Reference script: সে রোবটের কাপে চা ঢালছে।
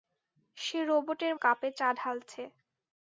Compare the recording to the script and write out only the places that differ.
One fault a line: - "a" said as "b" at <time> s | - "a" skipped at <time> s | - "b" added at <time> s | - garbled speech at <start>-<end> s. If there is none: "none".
none